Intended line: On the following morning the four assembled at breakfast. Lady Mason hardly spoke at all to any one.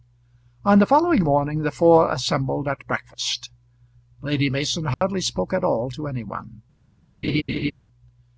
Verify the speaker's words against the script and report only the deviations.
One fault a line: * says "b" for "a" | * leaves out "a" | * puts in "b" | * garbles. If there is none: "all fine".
all fine